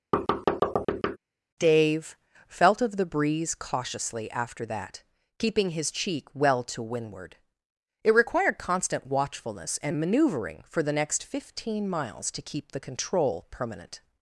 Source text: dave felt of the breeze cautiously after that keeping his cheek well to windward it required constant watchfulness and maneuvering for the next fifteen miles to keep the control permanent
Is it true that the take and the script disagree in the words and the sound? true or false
true